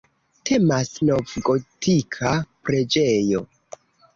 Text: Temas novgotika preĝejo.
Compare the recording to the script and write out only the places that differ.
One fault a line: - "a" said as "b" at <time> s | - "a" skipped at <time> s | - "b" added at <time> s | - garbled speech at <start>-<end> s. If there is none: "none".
none